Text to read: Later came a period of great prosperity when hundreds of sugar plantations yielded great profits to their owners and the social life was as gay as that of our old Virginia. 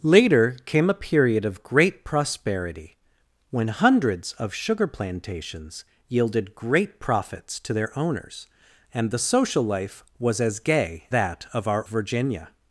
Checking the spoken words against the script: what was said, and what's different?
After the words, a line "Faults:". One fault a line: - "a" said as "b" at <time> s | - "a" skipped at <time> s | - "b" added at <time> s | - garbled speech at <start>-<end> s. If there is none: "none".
Later came a period of great prosperity when hundreds of sugar plantations yielded great profits to their owners and the social life was as gay that of our Virginia.
Faults:
- "as" skipped at 11.1 s
- "old" skipped at 11.9 s